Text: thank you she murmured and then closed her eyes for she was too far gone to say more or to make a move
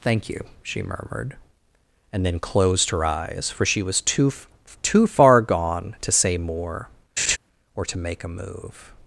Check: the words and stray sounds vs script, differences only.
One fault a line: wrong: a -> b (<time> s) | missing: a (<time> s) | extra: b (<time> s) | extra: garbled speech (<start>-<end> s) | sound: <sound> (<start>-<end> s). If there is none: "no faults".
extra: too (4.8 s)
sound: laugh (7.2-7.4 s)